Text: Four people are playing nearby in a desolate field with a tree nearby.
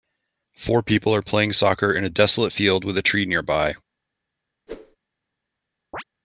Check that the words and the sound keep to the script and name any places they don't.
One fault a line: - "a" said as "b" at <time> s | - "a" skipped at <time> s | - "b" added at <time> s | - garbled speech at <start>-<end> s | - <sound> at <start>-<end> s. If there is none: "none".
- "nearby" said as "soccer" at 1.5 s
- whoosh at 4.7-5.0 s
- chirp at 5.9-6.0 s